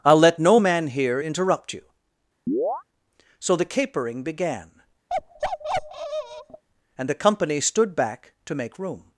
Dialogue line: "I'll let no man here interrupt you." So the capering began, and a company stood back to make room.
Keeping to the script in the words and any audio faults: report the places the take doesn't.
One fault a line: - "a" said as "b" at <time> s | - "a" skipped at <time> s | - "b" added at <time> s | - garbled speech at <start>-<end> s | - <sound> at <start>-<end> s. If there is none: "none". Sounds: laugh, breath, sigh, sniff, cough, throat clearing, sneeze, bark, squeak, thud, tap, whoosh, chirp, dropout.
- chirp at 2.5-2.8 s
- bark at 5.1-6.6 s
- "a" said as "the" at 7.1 s